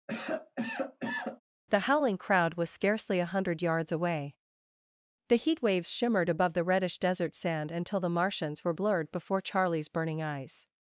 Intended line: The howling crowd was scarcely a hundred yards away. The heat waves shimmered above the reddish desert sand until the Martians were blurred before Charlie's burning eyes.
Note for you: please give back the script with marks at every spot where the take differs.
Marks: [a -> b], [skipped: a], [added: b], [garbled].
The howling crowd was scarcely a hundred yards away. The heat waves shimmered above the reddish desert sand until the Martians were blurred before Charlie's burning eyes.